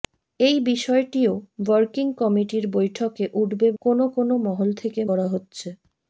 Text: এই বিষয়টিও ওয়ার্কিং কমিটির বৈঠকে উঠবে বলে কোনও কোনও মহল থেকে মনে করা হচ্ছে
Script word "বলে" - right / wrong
wrong